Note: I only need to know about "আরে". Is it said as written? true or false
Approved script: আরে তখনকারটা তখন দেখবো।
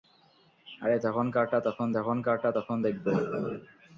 true